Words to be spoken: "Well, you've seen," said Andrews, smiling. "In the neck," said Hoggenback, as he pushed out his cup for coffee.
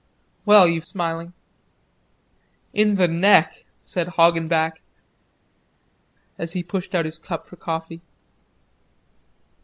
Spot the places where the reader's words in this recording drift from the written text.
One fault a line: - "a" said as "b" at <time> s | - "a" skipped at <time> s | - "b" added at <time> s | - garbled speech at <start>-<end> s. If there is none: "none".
- "seen said Andrews" skipped at 0.9 s